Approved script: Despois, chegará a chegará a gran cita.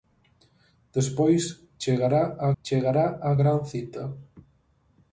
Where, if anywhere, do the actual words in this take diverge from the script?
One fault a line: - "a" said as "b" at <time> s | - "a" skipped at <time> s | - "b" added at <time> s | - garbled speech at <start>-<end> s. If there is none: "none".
none